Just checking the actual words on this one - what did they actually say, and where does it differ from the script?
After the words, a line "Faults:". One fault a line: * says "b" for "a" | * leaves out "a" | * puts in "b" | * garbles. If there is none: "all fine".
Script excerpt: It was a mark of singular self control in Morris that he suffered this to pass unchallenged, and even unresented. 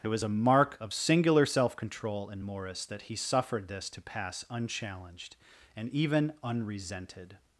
It was a mark of singular self control in Morris that he suffered this to pass unchallenged, and even unresented.
Faults:
all fine